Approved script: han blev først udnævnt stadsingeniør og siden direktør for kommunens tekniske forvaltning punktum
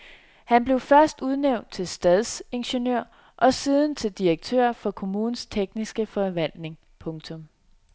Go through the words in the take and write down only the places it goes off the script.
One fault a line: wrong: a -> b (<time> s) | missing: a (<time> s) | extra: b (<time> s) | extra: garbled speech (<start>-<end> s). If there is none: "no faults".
extra: til (1.7 s)
extra: til (3.9 s)